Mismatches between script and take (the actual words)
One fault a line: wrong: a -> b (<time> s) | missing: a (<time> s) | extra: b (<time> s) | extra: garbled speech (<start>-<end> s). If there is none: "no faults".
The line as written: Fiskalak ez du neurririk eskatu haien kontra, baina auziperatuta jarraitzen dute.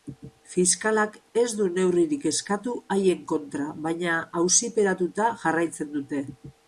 no faults